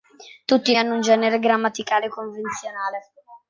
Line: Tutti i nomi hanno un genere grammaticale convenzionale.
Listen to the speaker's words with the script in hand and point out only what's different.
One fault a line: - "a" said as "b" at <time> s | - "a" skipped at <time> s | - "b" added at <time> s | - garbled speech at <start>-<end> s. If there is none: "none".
- "nomi" skipped at 0.8 s